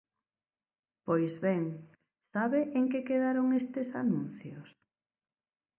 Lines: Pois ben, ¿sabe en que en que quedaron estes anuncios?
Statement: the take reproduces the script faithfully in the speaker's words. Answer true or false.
false